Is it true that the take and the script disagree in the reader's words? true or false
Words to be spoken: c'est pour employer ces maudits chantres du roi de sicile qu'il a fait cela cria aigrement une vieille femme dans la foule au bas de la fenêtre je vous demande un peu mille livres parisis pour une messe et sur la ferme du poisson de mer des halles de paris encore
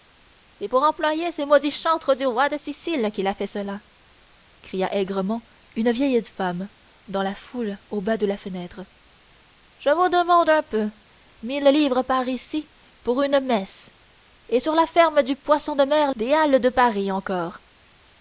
false